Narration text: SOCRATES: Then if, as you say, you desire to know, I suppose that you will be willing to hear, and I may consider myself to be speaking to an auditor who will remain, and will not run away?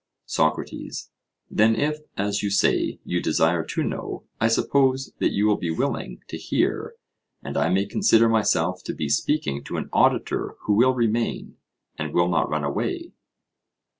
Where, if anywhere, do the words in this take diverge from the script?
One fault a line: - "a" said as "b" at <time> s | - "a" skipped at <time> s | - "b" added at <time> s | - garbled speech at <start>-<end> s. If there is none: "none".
none